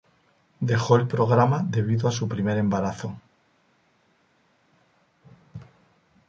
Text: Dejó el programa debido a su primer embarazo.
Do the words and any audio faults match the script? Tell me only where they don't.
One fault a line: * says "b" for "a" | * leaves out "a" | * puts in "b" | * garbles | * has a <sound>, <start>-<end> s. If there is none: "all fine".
all fine